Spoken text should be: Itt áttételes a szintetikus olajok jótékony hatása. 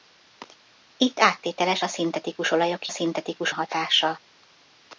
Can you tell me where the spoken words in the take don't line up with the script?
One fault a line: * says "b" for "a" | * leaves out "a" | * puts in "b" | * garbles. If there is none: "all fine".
* says "szintetikus" for "jótékony"